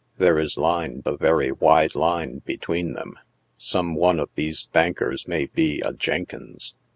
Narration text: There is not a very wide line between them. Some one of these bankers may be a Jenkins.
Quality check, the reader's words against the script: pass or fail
fail